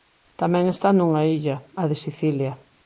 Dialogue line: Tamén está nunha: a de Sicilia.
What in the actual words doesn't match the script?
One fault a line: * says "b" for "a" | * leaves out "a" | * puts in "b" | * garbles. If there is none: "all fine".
* puts in "illa"